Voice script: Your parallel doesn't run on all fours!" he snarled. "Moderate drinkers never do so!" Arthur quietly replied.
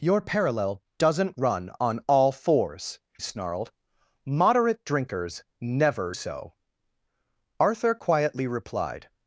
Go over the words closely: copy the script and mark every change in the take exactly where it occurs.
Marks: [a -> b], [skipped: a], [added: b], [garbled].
Your parallel doesn't run on all fours!" [skipped: he] snarled. "Moderate drinkers never [skipped: do] so!" Arthur quietly replied.